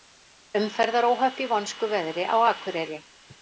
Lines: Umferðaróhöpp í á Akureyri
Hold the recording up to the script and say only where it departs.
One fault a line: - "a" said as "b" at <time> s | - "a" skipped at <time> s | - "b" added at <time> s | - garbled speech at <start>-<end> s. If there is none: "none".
- "vonskuveðri" added at 1.5 s